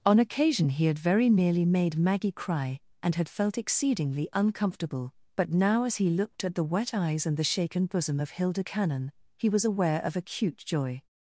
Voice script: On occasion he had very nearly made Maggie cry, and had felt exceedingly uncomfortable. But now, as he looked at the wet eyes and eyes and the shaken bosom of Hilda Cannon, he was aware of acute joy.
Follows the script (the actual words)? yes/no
no